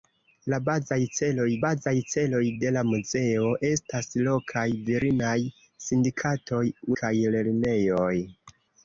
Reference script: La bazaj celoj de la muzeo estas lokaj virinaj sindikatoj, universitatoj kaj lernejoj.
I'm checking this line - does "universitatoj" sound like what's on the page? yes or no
no